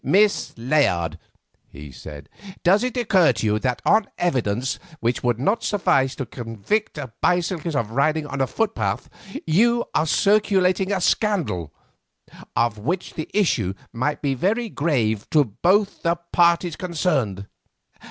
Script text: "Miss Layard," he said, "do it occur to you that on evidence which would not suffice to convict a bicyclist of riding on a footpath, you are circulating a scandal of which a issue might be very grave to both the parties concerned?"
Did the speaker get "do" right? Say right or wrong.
wrong